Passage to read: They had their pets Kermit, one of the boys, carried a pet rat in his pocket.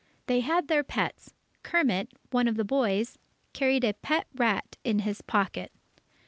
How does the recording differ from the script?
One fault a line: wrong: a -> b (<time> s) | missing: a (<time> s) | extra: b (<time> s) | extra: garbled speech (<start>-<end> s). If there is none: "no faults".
no faults